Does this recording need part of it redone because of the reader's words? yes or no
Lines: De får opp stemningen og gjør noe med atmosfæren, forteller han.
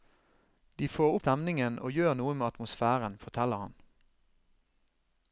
yes